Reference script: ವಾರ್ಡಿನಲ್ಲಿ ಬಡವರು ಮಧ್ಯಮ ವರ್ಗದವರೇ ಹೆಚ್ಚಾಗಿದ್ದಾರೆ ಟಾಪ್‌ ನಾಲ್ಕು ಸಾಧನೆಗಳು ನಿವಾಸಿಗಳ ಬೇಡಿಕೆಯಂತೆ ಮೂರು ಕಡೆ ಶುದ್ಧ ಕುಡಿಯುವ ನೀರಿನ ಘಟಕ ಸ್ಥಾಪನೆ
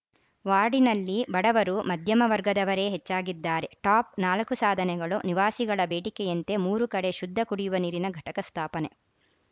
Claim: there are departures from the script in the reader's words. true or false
false